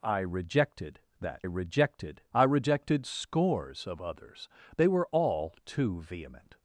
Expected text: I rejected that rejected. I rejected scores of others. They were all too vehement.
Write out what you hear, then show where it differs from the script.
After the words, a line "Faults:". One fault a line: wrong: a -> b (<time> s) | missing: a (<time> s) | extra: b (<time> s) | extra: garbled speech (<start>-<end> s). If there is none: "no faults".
I rejected that rejected. I rejected scores of others. They were all too vehement.
Faults:
no faults